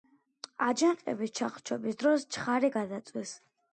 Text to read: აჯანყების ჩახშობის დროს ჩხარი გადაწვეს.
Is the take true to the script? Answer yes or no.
yes